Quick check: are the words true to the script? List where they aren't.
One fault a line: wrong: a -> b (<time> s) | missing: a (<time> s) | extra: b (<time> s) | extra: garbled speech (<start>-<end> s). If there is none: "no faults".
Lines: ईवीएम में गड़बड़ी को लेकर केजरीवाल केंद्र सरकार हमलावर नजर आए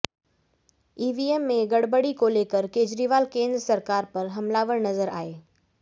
extra: पर (4.1 s)